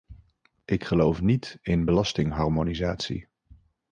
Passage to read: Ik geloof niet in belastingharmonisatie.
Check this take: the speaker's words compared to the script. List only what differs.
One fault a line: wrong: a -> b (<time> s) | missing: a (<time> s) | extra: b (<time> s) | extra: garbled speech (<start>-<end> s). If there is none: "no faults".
no faults